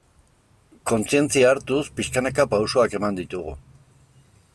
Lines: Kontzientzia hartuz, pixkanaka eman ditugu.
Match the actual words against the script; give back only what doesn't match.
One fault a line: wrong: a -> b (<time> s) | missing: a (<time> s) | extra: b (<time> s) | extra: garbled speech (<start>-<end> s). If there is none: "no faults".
extra: pausoak (2.5 s)